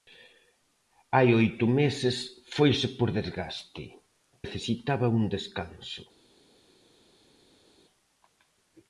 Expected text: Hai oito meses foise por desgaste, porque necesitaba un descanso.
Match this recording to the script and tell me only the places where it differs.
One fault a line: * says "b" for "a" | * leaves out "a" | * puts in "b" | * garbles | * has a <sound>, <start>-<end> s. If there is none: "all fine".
* leaves out "porque"